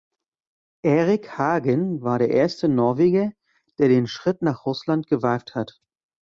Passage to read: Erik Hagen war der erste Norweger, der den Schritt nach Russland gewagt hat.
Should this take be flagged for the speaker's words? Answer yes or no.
no